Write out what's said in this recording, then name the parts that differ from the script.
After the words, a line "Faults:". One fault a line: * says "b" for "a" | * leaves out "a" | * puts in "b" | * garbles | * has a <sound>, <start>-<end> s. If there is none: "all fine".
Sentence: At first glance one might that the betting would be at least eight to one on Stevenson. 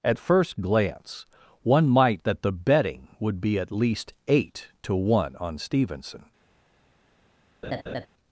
At first glance one might that the betting would be at least eight to one on Stevenson.
Faults:
* has a laugh, 7.6-8.1 s